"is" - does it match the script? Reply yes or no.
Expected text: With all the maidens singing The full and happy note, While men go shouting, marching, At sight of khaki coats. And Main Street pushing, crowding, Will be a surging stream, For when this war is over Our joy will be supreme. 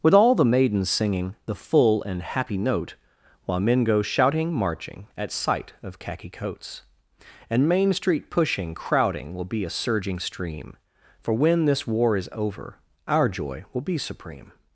yes